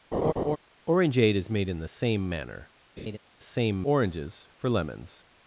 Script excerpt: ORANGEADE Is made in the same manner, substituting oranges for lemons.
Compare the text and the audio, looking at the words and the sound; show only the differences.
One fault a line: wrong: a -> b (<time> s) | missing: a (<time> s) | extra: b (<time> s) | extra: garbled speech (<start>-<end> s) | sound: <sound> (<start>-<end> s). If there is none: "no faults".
sound: laugh (0.1-0.6 s)
sound: laugh (3.0-3.2 s)
wrong: substituting -> same (3.4 s)